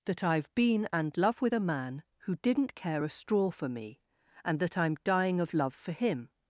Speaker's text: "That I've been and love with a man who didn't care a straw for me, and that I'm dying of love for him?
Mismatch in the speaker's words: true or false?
false